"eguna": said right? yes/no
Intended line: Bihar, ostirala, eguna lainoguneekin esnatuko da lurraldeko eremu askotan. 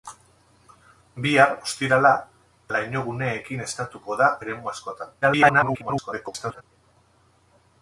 no